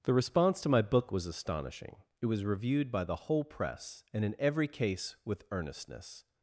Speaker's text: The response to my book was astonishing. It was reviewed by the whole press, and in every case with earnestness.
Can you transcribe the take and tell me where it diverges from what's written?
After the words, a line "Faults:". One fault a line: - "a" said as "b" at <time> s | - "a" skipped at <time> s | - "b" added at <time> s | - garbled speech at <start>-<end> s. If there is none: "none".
The response to my book was astonishing. It was reviewed by the whole press, and in every case with earnestness.
Faults:
none